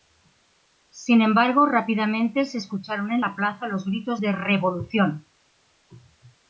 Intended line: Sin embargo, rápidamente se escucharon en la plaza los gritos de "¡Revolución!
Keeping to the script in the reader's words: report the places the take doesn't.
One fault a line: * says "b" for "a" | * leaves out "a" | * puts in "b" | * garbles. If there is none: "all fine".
all fine